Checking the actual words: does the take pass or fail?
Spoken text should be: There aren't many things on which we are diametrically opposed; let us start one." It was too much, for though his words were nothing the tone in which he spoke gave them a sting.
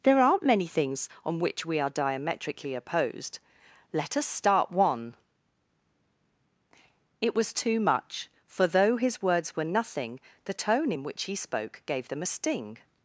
pass